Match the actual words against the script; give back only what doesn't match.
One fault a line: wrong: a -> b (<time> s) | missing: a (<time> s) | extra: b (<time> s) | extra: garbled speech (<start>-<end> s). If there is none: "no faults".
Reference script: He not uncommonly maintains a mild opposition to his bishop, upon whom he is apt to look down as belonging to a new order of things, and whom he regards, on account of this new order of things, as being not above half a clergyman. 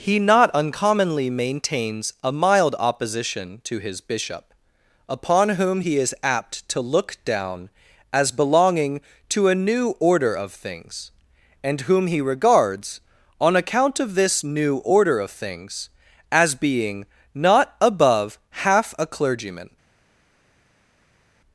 no faults